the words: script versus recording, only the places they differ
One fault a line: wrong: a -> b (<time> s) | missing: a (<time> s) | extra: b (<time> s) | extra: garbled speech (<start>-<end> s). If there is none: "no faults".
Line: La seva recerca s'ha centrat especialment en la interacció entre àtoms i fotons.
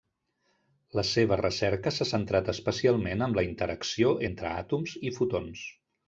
no faults